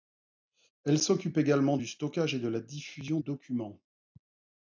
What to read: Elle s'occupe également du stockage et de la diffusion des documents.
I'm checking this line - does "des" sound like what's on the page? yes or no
no